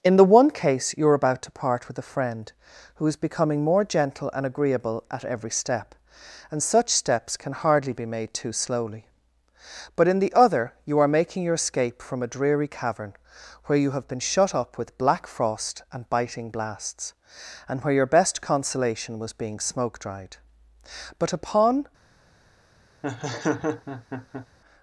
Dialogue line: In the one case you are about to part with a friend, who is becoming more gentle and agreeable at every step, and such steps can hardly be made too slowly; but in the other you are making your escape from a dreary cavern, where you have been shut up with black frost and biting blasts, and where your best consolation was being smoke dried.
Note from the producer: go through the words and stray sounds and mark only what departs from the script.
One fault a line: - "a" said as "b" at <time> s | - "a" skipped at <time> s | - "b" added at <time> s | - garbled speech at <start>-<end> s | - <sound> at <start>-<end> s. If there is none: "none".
- "But upon" added at 21.2 s
- laugh at 23.0-24.5 s